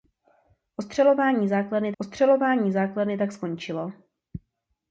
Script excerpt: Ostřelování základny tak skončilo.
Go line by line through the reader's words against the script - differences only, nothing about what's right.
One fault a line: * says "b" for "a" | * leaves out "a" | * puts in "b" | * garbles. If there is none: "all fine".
* puts in "ostřelování základny"